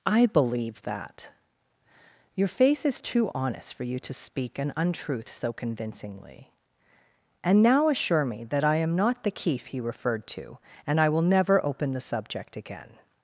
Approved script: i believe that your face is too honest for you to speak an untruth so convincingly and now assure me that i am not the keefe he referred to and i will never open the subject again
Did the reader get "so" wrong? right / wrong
right